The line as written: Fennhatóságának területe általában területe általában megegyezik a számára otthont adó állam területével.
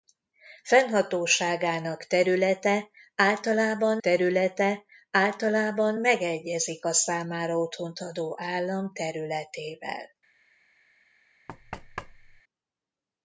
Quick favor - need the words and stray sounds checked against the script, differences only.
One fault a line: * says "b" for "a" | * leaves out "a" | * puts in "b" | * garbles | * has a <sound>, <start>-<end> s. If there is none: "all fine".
* has a thud, 11.5-12.4 s